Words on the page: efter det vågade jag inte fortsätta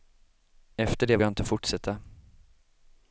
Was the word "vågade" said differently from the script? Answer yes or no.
yes